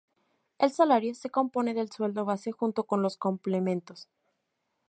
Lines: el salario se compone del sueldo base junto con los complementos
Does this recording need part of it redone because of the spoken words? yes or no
no